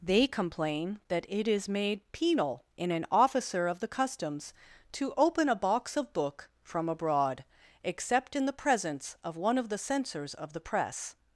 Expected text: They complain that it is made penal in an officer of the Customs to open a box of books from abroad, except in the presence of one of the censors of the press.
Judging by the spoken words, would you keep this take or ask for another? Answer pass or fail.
fail